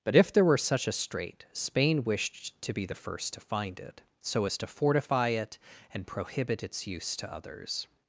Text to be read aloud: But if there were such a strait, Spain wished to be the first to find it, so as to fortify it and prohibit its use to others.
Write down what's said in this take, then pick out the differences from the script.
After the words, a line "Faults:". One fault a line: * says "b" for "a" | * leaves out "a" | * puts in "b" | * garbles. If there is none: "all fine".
But if there were such a strait, Spain wished to be the first to find it, so as to fortify it and prohibit its use to others.
Faults:
all fine